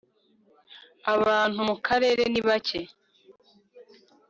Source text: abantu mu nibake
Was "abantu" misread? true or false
false